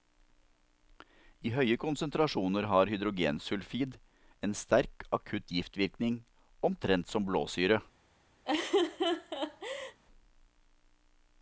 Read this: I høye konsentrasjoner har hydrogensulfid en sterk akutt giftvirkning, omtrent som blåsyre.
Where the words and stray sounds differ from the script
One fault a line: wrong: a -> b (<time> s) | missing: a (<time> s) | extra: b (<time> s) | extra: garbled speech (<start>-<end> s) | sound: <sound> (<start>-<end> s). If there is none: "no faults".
sound: laugh (8.4-10.0 s)